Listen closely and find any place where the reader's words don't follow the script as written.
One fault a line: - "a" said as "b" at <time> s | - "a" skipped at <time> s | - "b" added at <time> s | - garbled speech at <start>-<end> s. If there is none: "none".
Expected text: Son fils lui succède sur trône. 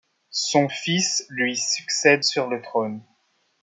- "le" added at 2.5 s